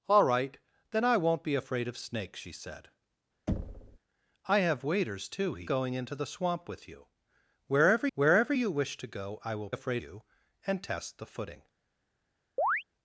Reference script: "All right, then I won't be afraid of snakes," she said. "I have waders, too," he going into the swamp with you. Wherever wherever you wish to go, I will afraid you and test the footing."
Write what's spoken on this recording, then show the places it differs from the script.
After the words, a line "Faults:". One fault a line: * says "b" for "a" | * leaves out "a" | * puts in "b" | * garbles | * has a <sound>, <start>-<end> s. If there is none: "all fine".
"All right, then I won't be afraid of snakes," she said. "I have waders, too," he going into the swamp with you. Wherever wherever you wish to go, I will afraid you and test the footing."
Faults:
* has a thud, 3.5-4.0 s
* has a chirp, 12.6-12.8 s